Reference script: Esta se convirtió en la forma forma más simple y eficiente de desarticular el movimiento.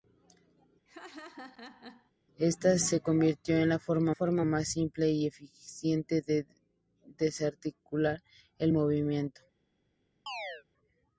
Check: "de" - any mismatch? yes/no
no